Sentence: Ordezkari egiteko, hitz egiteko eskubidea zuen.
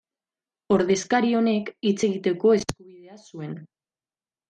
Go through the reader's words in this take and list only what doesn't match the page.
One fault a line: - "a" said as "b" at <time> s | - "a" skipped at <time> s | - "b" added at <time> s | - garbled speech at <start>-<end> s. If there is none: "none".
- "egiteko" said as "honek" at 1.4 s